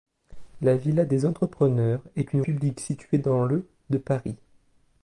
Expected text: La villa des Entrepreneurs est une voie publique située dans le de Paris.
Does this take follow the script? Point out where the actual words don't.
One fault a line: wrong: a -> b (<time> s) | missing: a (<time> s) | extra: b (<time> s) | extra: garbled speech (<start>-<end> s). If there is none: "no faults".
missing: voie (2.4 s)